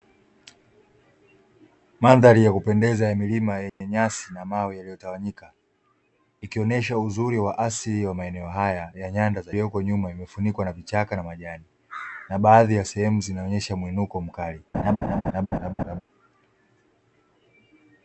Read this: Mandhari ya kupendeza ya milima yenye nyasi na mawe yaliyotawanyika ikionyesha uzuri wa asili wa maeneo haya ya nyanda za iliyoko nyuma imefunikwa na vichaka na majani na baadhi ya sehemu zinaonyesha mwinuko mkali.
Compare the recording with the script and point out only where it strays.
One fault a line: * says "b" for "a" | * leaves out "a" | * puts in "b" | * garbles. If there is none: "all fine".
all fine